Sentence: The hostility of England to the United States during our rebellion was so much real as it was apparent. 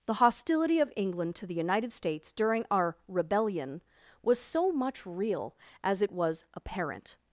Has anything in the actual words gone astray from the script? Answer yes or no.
no